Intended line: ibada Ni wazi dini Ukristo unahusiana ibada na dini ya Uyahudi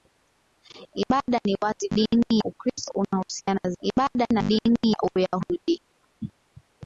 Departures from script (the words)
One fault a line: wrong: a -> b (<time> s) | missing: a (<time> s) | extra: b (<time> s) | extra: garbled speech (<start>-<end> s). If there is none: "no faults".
no faults